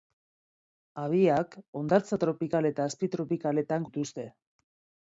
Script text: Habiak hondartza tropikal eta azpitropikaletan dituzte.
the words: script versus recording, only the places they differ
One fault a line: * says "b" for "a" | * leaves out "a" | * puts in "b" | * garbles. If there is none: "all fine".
all fine